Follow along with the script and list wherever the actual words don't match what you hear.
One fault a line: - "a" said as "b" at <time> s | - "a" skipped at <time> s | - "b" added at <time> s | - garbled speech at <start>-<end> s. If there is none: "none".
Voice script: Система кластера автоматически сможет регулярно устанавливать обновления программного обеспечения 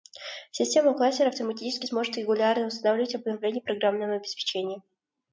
none